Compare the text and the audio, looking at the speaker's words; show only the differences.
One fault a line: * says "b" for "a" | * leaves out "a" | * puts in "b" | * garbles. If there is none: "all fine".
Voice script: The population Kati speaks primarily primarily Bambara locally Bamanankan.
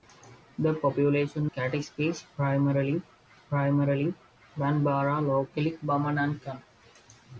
all fine